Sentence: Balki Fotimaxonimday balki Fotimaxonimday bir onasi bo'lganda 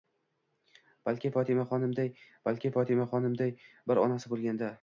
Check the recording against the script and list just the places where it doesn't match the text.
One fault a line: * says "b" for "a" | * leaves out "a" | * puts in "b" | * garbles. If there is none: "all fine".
all fine